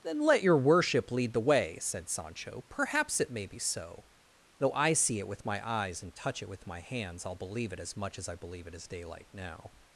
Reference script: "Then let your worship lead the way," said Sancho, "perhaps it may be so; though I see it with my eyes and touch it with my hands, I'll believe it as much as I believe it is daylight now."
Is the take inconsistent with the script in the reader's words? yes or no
no